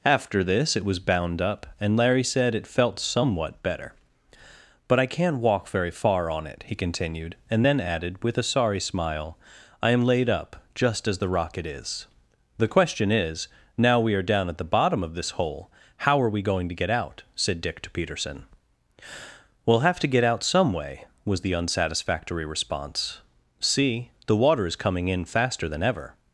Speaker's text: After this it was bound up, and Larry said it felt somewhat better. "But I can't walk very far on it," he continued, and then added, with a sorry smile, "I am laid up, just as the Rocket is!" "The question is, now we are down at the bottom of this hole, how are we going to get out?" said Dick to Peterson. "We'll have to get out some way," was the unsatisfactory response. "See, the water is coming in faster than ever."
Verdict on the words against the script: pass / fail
pass